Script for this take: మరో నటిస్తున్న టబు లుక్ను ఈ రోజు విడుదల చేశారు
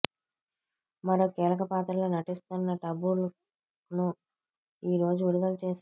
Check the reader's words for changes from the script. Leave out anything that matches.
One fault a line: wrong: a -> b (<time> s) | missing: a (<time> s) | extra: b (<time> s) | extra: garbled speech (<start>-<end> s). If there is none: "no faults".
extra: కీలక పాత్రలో (1.4 s)